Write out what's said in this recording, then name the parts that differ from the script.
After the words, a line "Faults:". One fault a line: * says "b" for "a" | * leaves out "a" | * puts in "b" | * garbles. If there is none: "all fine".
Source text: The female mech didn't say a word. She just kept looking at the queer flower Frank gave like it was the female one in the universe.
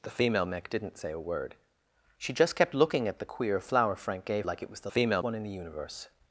The female mech didn't say a word. She just kept looking at the queer flower Frank gave like it was the female one in the universe.
Faults:
all fine